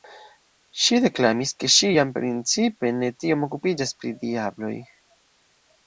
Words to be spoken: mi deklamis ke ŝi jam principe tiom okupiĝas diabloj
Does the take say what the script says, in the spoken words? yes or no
no